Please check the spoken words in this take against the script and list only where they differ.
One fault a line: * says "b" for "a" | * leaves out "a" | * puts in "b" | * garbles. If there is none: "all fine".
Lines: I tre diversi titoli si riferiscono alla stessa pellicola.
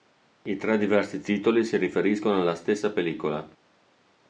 all fine